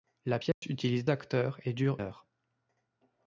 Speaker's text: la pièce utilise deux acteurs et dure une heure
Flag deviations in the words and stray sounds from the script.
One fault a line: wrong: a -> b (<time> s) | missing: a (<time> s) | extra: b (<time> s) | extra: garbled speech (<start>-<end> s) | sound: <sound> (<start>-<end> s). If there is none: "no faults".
sound: dropout (0.5-0.6 s)
missing: deux (1.0 s)
missing: une (2.0 s)